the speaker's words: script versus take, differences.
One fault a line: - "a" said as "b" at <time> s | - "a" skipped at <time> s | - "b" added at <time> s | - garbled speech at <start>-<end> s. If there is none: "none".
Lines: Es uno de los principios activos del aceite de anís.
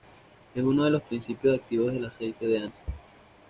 none